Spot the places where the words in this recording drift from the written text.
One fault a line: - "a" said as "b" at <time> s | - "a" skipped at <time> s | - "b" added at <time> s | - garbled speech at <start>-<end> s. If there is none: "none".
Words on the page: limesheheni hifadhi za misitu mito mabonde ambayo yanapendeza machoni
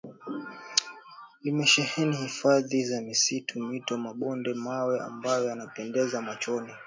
- "mawe" added at 4.5 s